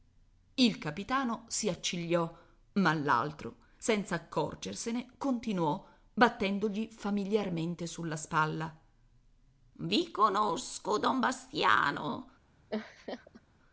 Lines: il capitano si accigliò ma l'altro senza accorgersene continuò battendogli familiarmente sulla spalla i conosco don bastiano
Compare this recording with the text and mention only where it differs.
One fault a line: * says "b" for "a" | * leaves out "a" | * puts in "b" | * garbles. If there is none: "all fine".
all fine